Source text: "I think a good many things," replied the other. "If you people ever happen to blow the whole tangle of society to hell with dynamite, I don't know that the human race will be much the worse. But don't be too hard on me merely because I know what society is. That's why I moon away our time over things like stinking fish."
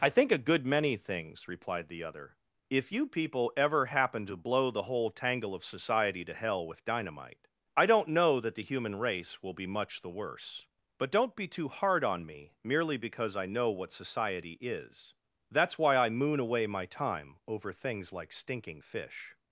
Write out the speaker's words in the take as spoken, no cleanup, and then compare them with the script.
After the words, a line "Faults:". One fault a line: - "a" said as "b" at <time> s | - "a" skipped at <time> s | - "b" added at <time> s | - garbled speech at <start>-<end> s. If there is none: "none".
"I think a good many things," replied the other. "If you people ever happen to blow the whole tangle of society to hell with dynamite, I don't know that the human race will be much the worse. But don't be too hard on me merely because I know what society is. That's why I moon away my time over things like stinking fish."
Faults:
- "our" said as "my" at 16.7 s